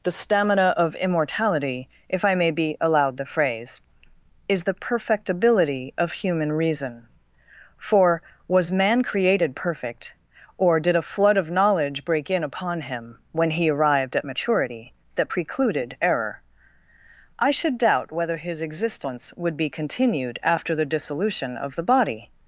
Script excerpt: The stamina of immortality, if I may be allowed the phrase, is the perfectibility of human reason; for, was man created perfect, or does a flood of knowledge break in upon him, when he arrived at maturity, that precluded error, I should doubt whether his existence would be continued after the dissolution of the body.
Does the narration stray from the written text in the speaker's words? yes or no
yes